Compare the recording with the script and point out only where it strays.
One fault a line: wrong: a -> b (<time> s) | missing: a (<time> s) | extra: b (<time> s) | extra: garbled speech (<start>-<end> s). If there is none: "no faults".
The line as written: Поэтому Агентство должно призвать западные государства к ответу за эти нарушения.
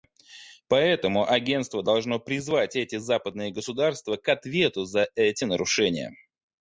extra: эти (2.8 s)